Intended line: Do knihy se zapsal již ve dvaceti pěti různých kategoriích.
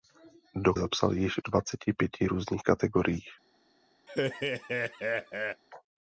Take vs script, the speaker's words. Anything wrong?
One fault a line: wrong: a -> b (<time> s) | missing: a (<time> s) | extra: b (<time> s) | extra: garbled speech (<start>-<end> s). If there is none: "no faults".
missing: knihy se (0.7 s)
missing: ve (1.4 s)